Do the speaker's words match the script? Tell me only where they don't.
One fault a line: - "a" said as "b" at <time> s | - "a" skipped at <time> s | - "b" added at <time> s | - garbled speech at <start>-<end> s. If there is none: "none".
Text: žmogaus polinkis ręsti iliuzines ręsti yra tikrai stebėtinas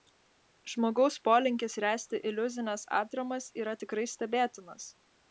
- "ręsti" said as "atramas" at 3.0 s